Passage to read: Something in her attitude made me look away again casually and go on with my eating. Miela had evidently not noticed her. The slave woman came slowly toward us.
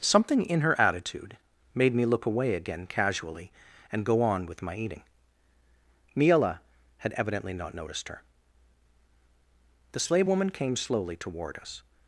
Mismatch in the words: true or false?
false